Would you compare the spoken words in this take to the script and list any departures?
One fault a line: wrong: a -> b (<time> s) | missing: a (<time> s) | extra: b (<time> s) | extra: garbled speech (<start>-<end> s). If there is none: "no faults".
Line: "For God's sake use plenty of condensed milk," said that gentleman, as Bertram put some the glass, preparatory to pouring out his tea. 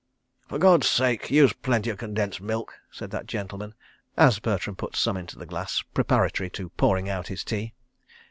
extra: into (5.2 s)